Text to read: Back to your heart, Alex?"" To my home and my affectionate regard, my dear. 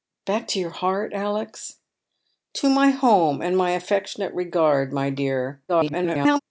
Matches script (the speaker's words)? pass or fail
fail